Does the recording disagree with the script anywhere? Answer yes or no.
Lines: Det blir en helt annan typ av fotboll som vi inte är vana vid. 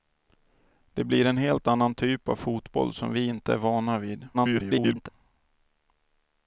yes